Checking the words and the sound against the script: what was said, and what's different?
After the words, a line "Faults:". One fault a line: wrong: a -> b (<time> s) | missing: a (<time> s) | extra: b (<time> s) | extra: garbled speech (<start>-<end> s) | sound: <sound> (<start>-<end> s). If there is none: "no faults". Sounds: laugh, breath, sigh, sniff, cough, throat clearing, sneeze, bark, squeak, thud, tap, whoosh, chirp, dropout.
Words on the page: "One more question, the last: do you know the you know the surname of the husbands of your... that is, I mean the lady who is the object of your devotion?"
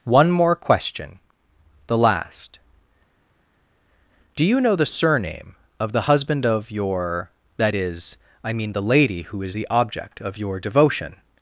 "One more question, the last: do you know the surname of the husband of your... that is, I mean the lady who is the object of your devotion?"
Faults:
missing: you know the (4.8 s)
wrong: husbands -> husband (6.1 s)